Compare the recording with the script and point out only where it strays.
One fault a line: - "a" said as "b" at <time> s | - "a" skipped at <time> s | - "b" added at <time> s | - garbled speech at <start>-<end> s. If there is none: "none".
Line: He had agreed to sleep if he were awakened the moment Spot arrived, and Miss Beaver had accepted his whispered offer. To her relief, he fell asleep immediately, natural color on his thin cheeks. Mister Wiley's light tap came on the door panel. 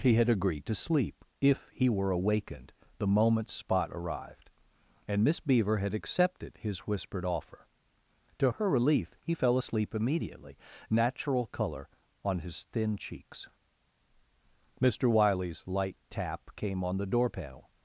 none